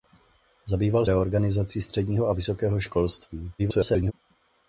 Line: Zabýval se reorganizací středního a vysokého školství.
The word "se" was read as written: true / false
false